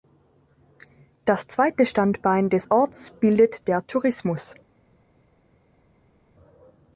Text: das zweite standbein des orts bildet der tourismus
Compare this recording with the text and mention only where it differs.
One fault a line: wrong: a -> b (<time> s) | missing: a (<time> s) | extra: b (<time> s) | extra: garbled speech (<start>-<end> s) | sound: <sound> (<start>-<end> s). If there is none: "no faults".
no faults